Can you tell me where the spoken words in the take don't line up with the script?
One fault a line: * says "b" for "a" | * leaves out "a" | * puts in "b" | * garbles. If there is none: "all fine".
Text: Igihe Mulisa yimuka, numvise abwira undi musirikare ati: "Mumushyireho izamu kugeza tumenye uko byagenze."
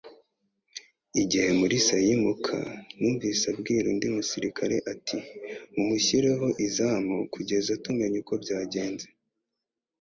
all fine